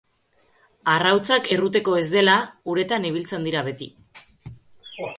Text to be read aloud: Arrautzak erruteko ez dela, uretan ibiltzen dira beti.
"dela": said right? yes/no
yes